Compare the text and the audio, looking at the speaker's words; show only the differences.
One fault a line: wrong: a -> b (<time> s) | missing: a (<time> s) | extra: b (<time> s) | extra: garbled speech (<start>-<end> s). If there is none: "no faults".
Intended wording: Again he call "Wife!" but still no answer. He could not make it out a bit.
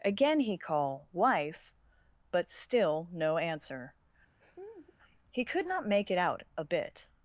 no faults